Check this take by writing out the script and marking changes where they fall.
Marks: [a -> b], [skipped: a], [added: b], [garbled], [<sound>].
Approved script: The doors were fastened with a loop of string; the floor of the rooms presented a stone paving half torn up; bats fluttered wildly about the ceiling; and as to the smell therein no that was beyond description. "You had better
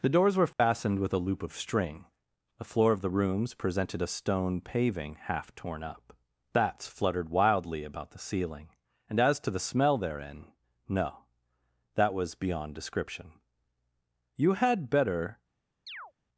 The doors were fastened [dropout] with a loop of string; the floor of the rooms presented a stone paving half torn up; bats fluttered wildly about the ceiling; and as to the smell therein no that was beyond description. "You had better [chirp]